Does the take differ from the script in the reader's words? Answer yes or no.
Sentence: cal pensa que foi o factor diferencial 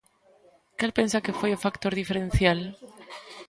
no